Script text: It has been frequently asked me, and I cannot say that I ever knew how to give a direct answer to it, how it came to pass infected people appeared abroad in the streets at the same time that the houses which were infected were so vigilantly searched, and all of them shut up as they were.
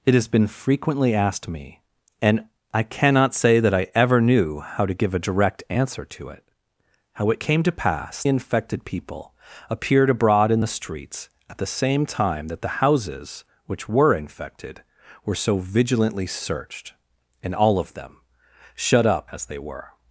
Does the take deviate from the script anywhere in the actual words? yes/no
no